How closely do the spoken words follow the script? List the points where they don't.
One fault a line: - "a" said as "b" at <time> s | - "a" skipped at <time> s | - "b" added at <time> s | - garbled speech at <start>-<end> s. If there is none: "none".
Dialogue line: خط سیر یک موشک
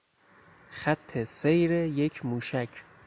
none